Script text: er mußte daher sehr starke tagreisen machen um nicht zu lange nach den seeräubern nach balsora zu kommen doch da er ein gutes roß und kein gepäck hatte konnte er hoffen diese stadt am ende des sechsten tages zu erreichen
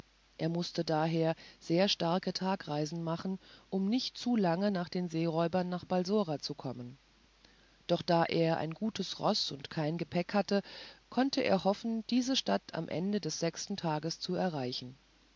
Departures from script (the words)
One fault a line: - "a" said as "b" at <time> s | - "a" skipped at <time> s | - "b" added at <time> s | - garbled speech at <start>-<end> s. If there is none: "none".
none